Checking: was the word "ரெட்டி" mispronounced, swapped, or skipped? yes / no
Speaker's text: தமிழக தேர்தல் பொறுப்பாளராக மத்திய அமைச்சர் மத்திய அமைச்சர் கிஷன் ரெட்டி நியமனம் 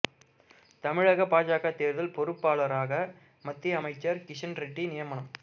no